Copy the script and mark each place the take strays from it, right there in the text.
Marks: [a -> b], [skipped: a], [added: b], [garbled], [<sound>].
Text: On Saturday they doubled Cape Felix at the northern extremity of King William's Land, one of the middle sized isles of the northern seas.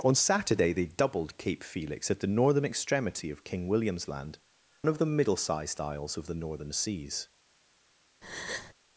On Saturday they doubled Cape Felix at the northern extremity of King William's Land, [skipped: one] of the middle sized isles of the northern seas. [breath]